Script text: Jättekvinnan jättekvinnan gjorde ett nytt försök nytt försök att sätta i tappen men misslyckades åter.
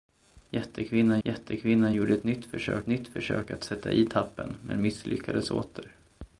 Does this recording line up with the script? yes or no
yes